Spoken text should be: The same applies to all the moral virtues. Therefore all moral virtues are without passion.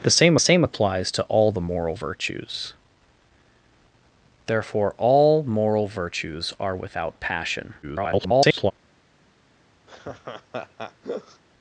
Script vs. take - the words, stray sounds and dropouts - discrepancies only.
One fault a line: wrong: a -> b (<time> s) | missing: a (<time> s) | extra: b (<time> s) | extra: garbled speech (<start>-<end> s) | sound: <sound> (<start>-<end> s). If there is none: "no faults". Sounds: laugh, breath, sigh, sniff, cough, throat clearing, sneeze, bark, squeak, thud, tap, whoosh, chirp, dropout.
extra: same (0.4 s)
extra: garbled speech (7.8-8.7 s)
sound: laugh (9.9-11.4 s)